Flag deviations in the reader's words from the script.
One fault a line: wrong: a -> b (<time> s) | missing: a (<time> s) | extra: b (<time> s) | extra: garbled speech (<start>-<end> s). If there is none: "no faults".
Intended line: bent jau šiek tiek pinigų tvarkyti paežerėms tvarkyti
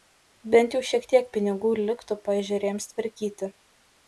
wrong: tvarkyti -> liktų (1.8 s)